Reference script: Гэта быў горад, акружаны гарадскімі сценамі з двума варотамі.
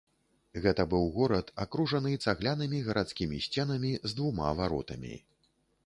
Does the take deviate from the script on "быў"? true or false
false